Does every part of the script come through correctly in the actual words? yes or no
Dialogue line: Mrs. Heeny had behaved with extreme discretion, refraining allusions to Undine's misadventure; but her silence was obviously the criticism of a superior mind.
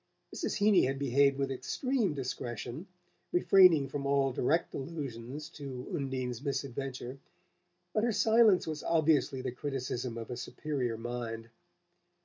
no